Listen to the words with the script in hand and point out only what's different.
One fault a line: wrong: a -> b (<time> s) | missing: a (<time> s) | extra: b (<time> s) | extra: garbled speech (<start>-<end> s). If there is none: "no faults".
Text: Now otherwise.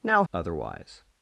no faults